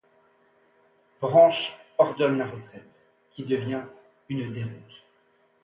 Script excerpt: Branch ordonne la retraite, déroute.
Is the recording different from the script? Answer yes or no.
yes